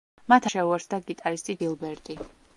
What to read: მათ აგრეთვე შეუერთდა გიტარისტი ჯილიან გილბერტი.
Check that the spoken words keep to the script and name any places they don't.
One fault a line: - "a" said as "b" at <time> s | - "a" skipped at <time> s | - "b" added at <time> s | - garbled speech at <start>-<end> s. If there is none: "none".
- "აგრეთვე" skipped at 0.5 s
- "ჯილიან" skipped at 1.6 s